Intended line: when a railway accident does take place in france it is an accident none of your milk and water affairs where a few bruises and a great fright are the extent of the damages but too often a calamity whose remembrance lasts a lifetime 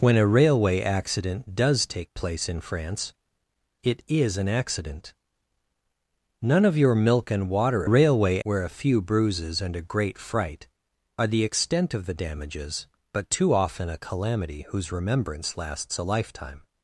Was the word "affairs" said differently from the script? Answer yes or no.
yes